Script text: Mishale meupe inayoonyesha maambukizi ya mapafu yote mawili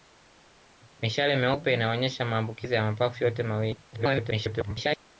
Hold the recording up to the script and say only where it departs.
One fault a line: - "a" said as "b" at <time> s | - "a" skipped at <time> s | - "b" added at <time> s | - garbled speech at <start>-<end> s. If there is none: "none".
- garbled speech at 3.9-5.0 s